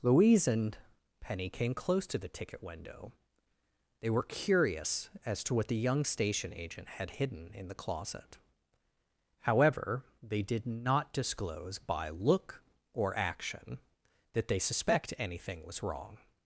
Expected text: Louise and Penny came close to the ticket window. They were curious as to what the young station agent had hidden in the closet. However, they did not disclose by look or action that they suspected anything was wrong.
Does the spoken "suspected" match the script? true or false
false